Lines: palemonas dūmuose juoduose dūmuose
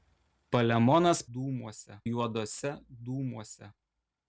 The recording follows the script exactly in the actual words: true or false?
true